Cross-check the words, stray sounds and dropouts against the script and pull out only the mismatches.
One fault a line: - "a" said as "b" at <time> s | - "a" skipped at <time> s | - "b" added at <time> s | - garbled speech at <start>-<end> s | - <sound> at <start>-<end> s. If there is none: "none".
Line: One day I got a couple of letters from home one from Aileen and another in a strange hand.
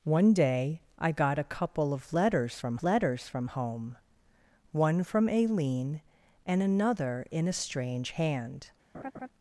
- "letters from" added at 2.8 s
- laugh at 8.9-9.3 s